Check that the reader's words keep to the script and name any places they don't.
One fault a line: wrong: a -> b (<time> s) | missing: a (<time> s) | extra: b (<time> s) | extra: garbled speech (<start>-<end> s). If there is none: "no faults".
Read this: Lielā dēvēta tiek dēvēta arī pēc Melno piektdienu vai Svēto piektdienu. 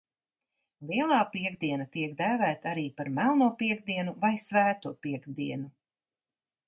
wrong: dēvēta -> piektdiena (1.3 s)
wrong: pēc -> par (3.0 s)